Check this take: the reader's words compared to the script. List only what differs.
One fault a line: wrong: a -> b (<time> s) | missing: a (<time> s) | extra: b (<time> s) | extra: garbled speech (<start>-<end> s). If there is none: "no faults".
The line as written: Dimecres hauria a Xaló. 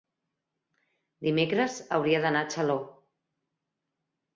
extra: d'anar (2.3 s)